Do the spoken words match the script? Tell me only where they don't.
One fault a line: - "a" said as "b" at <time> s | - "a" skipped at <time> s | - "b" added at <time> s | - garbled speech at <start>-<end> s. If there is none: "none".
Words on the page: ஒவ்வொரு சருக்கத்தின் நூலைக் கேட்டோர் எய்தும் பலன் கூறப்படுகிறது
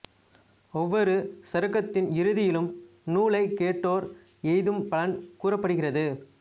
- "இறுதியிலும்" added at 2.1 s